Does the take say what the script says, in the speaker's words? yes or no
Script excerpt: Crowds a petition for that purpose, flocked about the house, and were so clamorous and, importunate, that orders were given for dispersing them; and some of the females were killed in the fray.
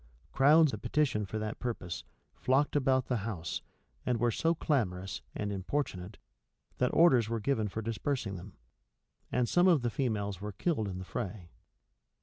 yes